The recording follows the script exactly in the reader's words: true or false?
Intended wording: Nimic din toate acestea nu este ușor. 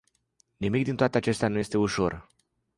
true